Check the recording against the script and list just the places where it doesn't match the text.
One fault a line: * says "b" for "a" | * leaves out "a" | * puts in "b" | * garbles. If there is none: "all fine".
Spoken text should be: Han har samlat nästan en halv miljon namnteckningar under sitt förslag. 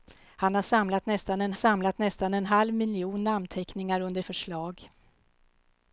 * puts in "samlat nästan en"
* leaves out "sitt"